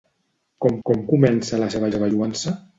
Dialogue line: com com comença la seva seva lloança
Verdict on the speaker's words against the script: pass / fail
pass